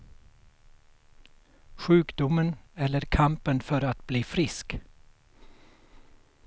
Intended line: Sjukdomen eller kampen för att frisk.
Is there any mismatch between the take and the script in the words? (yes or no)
yes